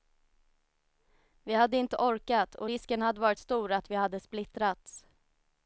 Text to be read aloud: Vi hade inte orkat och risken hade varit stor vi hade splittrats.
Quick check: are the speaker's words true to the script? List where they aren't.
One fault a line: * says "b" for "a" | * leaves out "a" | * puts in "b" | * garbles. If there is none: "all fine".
* puts in "att"